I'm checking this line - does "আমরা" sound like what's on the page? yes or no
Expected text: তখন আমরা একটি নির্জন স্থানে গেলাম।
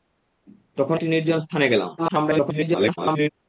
no